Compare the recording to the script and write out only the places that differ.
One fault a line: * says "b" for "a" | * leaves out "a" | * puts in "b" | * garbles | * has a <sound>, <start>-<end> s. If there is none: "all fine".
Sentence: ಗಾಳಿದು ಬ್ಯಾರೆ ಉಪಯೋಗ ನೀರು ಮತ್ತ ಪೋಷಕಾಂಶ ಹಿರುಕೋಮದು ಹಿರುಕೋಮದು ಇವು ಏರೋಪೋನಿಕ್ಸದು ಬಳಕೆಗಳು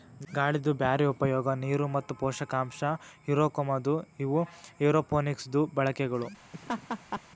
* leaves out "ಹಿರುಕೋಮದು"
* has a laugh, 6.5-7.2 s